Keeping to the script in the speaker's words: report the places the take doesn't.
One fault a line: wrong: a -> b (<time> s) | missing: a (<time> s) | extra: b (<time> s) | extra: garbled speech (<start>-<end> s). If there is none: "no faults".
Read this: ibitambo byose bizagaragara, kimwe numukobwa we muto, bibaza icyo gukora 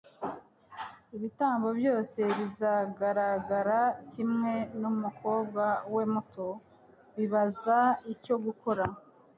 no faults